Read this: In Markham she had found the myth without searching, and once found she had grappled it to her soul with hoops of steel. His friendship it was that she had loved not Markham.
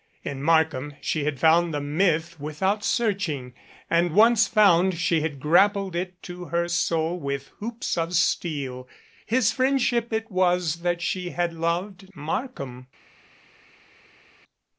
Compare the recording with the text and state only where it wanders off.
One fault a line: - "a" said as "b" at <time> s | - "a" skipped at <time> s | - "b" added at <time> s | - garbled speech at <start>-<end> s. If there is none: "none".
- "not" skipped at 12.1 s